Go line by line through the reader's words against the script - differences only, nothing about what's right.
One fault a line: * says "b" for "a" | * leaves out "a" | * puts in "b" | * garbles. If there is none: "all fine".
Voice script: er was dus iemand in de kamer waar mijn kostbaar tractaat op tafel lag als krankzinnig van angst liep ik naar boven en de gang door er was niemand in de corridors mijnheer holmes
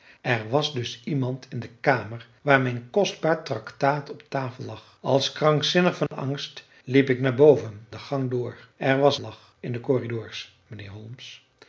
* leaves out "en"
* says "lag" for "niemand"